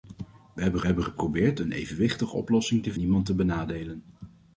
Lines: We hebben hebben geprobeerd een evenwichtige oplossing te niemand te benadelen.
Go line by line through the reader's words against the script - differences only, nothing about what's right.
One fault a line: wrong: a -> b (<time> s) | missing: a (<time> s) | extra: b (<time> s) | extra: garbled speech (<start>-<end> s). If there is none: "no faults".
no faults